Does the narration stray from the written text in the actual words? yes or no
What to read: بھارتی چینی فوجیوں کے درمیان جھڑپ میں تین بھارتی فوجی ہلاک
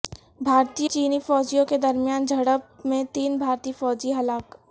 no